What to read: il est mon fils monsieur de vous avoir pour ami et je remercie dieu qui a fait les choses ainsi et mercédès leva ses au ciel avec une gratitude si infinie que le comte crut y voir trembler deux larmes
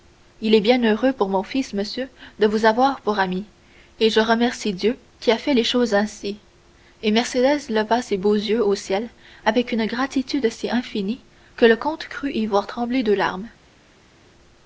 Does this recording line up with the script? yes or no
no